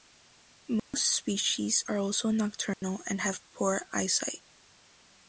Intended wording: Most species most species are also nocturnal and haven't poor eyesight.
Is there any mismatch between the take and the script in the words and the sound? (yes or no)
yes